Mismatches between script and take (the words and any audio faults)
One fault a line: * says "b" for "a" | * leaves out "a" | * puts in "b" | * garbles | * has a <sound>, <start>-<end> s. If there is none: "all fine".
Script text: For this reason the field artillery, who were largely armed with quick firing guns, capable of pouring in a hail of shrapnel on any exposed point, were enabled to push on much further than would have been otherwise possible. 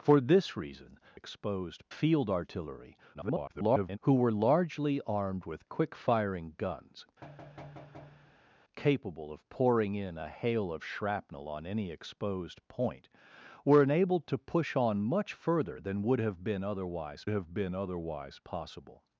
* says "exposed" for "the"
* garbles
* has a thud, 7.2-8.6 s
* puts in "have been otherwise"